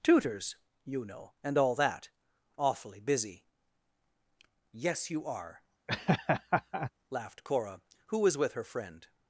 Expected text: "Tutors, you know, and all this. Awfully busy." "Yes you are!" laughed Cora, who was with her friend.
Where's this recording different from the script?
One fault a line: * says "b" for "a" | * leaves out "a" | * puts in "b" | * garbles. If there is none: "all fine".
* says "that" for "this"